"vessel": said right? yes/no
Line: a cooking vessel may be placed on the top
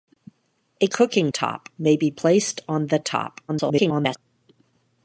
no